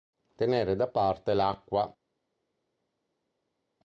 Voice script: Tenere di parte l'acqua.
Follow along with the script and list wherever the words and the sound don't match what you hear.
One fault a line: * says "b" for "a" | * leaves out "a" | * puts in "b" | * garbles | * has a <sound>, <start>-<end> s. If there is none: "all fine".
* says "da" for "di"